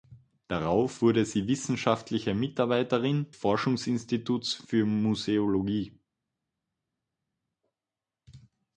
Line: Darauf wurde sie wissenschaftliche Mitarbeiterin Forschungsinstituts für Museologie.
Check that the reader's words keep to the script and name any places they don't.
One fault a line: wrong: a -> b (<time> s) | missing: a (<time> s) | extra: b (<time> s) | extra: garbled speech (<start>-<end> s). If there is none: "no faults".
no faults